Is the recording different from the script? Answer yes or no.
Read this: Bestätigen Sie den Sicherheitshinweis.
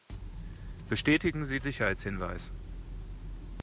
yes